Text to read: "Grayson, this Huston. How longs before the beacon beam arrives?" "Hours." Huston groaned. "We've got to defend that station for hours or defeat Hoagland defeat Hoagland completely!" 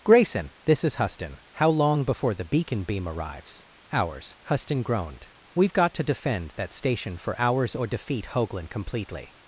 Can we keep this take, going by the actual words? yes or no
no